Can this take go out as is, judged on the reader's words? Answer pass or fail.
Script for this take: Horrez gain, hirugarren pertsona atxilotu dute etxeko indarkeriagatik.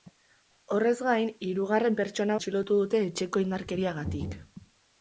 pass